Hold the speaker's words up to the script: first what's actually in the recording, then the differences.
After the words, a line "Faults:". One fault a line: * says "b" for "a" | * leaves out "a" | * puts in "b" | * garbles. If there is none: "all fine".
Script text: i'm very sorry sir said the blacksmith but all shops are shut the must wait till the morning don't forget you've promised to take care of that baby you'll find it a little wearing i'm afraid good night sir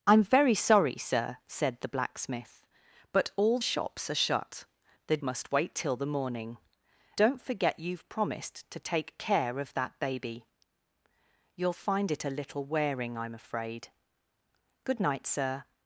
i'm very sorry sir said the blacksmith but all shops are shut the must wait till the morning don't forget you've promised to take care of that baby you'll find it a little wearing i'm afraid good night sir
Faults:
all fine